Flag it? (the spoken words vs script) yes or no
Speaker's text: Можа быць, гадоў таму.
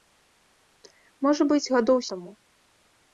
no